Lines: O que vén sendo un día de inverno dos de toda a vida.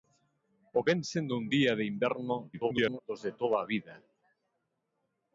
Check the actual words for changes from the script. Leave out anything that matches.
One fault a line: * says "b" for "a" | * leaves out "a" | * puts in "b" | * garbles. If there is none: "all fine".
* leaves out "que"
* garbles